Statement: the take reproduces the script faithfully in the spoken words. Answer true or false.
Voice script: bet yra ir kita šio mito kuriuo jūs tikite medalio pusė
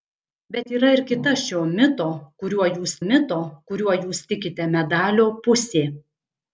false